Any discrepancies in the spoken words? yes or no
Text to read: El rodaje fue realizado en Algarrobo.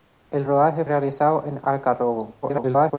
yes